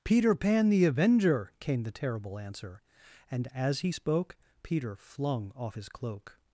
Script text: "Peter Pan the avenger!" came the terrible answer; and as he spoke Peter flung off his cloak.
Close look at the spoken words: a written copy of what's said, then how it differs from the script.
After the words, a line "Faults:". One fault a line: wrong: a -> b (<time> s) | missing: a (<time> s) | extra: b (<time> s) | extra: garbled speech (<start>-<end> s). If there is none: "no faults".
"Peter Pan the avenger!" came the terrible answer; and as he spoke Peter flung off his cloak.
Faults:
no faults